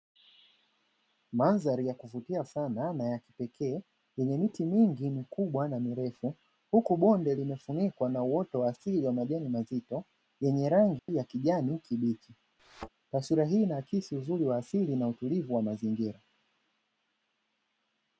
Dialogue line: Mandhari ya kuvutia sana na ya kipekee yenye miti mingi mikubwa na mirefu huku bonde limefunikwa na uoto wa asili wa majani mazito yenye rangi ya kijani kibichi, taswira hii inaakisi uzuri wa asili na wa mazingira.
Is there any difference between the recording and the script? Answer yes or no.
yes